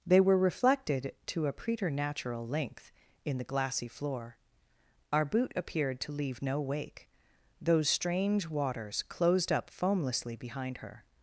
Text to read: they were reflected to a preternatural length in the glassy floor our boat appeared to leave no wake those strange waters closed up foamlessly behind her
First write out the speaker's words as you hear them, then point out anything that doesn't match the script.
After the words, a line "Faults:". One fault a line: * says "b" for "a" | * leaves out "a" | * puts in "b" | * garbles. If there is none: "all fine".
they were reflected to a preternatural length in the glassy floor our boot appeared to leave no wake those strange waters closed up foamlessly behind her
Faults:
* says "boot" for "boat"